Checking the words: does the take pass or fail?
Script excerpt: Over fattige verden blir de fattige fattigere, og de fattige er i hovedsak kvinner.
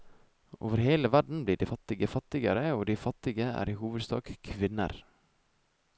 fail